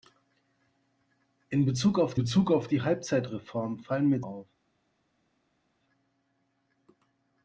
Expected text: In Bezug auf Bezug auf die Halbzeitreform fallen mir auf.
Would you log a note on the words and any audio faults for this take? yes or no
no